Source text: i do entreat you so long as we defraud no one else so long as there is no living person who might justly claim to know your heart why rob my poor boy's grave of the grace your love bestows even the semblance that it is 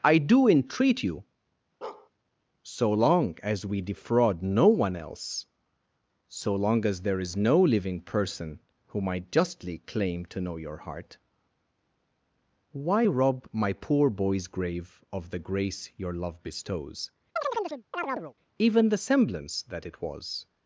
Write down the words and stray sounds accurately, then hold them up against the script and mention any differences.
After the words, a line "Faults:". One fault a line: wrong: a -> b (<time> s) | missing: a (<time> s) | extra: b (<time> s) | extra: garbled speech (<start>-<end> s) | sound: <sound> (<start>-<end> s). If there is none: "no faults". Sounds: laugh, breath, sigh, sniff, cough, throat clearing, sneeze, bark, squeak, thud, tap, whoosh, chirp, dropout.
i do entreat you so long as we defraud no one else so long as there is no living person who might justly claim to know your heart why rob my poor boy's grave of the grace your love bestows even the semblance that it was
Faults:
sound: bark (1.8-2.1 s)
sound: chirp (17.4-18.3 s)
wrong: is -> was (20.0 s)